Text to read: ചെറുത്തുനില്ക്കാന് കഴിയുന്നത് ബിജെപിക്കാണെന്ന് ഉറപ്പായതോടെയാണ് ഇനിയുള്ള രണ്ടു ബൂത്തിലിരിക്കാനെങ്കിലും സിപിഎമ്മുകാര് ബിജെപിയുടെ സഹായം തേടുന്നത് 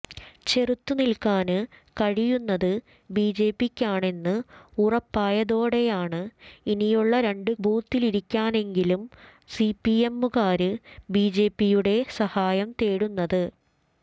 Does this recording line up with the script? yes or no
yes